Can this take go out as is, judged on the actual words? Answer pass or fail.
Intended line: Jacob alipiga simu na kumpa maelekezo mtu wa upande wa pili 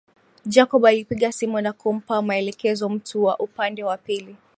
pass